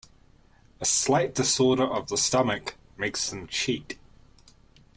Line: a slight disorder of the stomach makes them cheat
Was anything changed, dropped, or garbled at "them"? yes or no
no